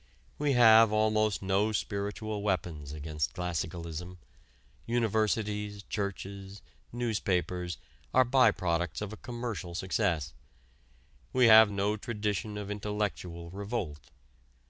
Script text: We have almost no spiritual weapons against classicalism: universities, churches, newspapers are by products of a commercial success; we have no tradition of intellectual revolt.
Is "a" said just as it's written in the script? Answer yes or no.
yes